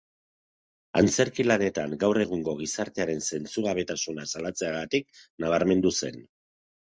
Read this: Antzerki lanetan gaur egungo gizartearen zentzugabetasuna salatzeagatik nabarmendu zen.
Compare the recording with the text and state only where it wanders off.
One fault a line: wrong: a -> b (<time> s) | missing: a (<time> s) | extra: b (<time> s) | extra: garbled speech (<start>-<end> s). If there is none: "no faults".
no faults